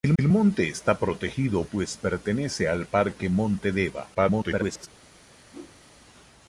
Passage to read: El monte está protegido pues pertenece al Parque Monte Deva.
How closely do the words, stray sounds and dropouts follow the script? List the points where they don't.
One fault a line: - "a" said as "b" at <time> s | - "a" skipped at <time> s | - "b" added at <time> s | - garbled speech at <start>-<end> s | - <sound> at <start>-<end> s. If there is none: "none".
- "el" added at 0.2 s
- garbled speech at 4.1-4.9 s
- whoosh at 5.5-5.8 s